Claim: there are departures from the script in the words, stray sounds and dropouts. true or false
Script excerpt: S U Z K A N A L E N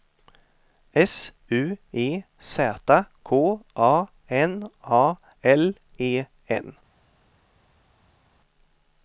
true